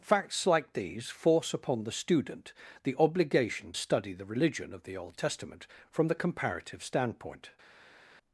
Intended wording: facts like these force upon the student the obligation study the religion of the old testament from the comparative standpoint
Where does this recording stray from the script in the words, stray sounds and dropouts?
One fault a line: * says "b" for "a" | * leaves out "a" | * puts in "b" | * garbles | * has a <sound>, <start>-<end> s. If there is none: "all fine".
all fine